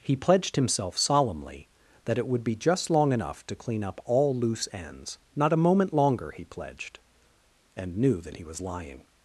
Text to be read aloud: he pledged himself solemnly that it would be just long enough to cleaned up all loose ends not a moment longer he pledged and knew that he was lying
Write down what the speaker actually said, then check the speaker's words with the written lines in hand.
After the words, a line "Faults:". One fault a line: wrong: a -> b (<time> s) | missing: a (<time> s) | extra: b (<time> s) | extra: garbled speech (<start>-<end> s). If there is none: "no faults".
he pledged himself solemnly that it would be just long enough to clean up all loose ends not a moment longer he pledged and knew that he was lying
Faults:
wrong: cleaned -> clean (3.5 s)